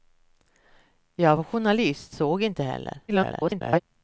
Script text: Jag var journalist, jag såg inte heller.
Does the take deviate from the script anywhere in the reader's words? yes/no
yes